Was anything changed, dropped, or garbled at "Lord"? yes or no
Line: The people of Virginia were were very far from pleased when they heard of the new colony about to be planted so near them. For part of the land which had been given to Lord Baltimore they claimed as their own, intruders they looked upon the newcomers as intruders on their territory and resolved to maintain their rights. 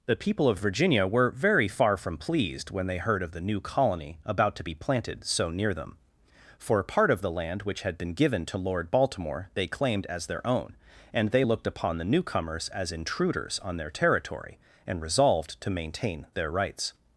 no